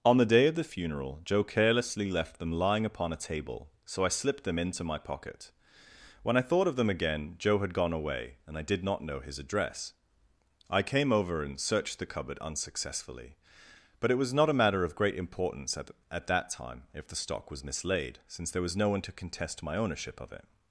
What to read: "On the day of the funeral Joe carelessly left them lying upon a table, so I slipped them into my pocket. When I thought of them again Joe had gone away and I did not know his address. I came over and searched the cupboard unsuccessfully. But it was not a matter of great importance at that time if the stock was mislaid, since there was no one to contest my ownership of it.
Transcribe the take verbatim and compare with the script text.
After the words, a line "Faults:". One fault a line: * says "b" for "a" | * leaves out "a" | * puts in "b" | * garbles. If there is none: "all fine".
"On the day of the funeral Joe carelessly left them lying upon a table, so I slipped them into my pocket. When I thought of them again Joe had gone away and I did not know his address. I came over and searched the cupboard unsuccessfully. But it was not a matter of great importance at at that time if the stock was mislaid, since there was no one to contest my ownership of it.
Faults:
* puts in "at"